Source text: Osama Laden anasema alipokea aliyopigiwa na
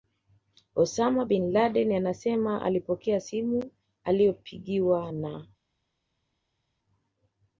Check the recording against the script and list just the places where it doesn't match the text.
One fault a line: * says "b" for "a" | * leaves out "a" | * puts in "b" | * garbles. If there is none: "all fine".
* puts in "Bin"
* puts in "simu"